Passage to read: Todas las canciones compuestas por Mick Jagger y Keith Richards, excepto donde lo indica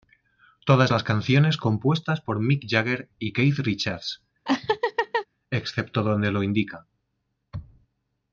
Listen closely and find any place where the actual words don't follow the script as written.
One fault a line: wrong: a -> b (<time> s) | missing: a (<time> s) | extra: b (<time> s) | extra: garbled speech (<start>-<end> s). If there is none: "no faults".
no faults